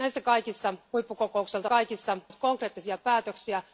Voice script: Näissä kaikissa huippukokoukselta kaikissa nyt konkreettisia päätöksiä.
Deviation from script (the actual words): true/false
false